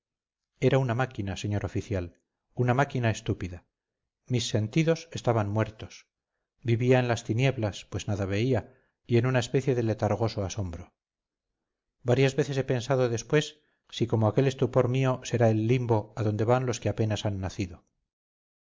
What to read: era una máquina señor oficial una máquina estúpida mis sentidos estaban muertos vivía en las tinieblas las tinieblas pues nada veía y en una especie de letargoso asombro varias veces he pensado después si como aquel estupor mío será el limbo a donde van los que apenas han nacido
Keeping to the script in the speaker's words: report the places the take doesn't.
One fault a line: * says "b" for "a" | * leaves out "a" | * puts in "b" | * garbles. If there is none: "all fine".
* leaves out "las tinieblas"